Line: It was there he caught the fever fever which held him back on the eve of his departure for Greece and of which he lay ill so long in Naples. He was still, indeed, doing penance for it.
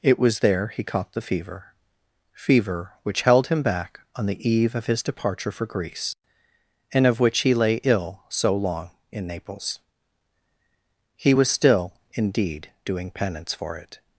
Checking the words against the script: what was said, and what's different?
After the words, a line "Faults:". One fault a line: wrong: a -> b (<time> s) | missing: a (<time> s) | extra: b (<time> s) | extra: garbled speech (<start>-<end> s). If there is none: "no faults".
It was there he caught the fever fever which held him back on the eve of his departure for Greece and of which he lay ill so long in Naples. He was still, indeed, doing penance for it.
Faults:
no faults